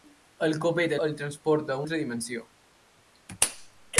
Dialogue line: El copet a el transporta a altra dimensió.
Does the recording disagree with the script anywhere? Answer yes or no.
no